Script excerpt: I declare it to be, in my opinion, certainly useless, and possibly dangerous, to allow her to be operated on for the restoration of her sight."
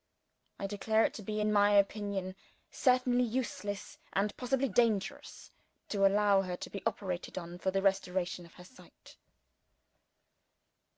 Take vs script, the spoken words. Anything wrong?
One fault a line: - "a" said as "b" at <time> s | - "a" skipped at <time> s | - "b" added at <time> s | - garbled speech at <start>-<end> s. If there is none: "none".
none